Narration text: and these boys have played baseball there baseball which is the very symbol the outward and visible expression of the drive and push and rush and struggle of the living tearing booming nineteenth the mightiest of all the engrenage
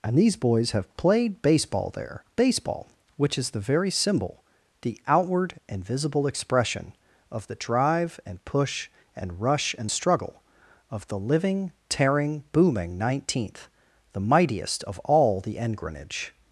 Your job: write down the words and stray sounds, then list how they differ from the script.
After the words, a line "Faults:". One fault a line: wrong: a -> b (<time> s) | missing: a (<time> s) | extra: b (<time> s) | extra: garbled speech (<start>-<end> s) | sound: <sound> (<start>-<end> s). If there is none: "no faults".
and these boys have played baseball there baseball which is the very symbol the outward and visible expression of the drive and push and rush and struggle of the living tearing booming nineteenth the mightiest of all the engrenage
Faults:
no faults